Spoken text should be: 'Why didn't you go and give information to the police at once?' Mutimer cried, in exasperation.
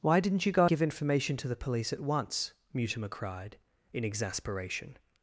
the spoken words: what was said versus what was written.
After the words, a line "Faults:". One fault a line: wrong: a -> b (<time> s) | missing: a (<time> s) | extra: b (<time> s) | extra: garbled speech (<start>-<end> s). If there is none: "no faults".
'Why didn't you go give information to the police at once?' Mutimer cried, in exasperation.
Faults:
missing: and (0.7 s)